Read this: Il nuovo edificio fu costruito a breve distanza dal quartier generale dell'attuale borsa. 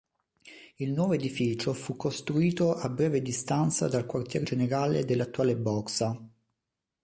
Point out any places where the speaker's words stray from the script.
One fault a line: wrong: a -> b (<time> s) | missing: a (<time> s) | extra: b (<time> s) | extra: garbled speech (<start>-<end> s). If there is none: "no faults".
no faults